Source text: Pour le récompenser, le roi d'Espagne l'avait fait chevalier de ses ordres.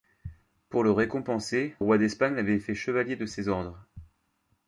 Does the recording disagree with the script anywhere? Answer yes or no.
yes